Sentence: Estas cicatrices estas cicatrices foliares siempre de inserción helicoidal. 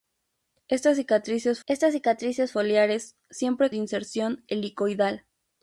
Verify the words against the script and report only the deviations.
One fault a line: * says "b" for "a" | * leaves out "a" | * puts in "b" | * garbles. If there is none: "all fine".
all fine